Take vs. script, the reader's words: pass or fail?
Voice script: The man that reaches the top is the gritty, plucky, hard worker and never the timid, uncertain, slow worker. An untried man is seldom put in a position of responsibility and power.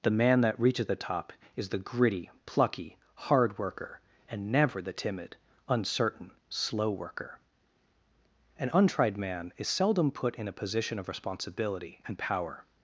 pass